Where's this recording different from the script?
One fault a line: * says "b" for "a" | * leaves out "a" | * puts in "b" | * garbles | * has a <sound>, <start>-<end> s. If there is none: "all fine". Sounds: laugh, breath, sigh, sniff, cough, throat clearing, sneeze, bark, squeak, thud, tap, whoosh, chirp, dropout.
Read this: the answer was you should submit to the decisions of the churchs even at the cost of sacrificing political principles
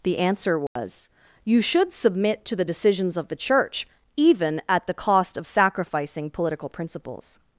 * has a dropout, 0.7-0.8 s
* says "church" for "churchs"